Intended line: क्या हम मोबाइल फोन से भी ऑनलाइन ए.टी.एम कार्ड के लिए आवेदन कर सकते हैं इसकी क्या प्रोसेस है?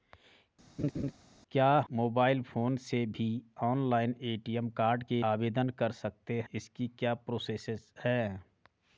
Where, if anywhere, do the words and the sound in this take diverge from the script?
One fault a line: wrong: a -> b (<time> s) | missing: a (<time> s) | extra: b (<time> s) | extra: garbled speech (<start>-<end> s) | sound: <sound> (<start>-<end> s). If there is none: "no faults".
sound: laugh (0.8-1.1 s)
missing: हम (1.7 s)
missing: लिए (5.2 s)
missing: हैं (6.4 s)